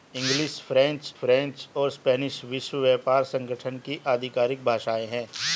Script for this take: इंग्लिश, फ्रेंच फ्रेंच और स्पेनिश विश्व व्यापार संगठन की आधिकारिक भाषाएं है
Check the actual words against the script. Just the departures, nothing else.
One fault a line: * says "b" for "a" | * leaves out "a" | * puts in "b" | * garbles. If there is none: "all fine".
all fine